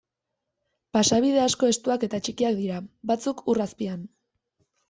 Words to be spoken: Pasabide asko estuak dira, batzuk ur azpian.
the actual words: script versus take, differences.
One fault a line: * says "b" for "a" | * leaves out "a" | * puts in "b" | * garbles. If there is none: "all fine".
* puts in "eta txikiak"